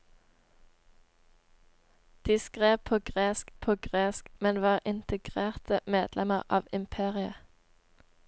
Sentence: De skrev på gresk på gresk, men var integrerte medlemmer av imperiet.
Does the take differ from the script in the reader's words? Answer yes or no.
no